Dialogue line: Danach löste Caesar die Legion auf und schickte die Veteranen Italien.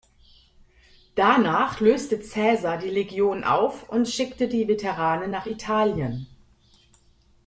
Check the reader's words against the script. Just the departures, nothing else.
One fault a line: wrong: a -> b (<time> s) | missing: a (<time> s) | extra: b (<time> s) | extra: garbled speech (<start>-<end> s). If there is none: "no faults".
extra: nach (5.3 s)